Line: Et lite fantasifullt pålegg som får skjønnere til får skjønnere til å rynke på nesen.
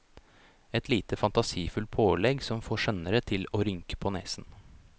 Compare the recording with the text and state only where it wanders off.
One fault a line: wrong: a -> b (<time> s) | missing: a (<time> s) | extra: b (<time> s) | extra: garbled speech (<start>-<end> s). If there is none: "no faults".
missing: får skjønnere til (3.5 s)